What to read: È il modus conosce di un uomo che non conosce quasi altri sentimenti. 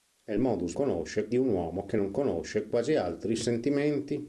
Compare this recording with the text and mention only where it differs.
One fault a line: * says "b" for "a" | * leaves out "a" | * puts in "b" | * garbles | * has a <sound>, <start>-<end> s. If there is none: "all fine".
all fine